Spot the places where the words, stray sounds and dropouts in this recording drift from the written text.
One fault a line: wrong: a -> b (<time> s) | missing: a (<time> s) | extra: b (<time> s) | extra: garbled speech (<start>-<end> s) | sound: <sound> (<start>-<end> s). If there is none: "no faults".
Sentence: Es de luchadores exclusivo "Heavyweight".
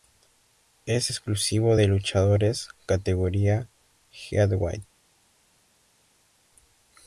extra: exclusivo (1.1 s)
wrong: exclusivo -> categoría (2.8 s)